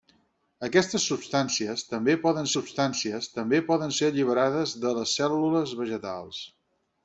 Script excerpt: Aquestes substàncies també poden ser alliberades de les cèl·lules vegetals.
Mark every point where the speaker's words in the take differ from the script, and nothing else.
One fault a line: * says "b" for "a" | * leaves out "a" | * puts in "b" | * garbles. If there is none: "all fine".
* puts in "substàncies també poden"